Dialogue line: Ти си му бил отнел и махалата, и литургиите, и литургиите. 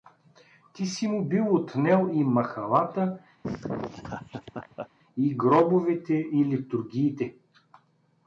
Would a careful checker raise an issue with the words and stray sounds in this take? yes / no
yes